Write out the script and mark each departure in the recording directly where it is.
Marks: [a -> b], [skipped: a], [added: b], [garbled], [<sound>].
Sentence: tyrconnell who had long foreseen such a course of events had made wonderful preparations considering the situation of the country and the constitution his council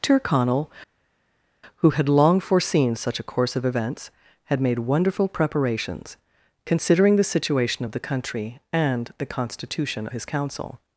tyrconnell who had long foreseen such a course of events had made wonderful preparations considering the situation of the country and the constitution his council